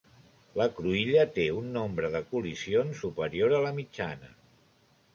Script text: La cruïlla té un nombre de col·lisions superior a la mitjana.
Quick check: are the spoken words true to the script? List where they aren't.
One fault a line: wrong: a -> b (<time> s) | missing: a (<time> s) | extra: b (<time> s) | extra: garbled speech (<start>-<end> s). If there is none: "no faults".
no faults